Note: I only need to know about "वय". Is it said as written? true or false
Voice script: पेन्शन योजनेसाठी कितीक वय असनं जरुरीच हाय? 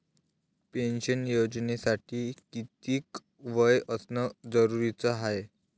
true